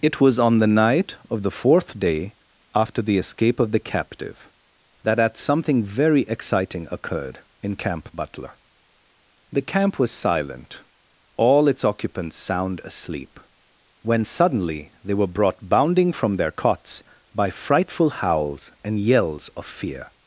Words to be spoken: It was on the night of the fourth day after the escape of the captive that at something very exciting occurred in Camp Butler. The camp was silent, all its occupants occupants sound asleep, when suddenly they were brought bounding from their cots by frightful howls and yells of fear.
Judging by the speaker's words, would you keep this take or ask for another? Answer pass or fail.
fail